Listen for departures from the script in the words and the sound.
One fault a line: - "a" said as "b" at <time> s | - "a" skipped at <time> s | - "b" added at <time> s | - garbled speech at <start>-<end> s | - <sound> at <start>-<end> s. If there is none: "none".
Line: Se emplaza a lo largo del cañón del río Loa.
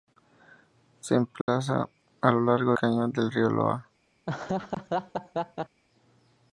- dropout at 1.4-1.5 s
- "del" skipped at 2.7 s
- laugh at 4.3-5.8 s